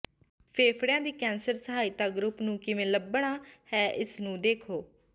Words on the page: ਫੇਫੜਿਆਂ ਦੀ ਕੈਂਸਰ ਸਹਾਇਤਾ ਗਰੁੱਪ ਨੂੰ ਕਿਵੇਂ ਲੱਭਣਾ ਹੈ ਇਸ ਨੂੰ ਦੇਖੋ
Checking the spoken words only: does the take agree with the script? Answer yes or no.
yes